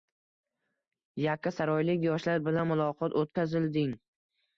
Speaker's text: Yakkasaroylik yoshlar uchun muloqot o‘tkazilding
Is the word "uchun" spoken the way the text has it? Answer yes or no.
no